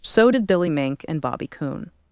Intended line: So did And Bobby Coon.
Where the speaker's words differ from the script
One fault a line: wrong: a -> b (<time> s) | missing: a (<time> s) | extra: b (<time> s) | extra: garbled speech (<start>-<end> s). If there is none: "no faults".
extra: Billy Mink (0.5 s)